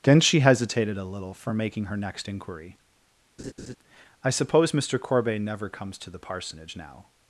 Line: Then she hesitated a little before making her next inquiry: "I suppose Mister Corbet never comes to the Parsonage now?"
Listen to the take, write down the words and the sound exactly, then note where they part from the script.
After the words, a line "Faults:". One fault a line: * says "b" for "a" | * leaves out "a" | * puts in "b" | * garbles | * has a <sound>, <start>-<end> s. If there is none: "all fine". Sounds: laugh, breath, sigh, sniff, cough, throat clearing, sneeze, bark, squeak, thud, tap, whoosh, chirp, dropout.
Then she hesitated a little for making her next inquiry: "I suppose Mister Corbet never comes to the Parsonage now?"
Faults:
* says "for" for "before"
* has a laugh, 3.4-3.8 s